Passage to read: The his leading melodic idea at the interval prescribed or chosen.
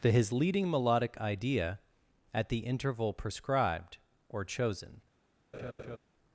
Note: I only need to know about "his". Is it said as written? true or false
true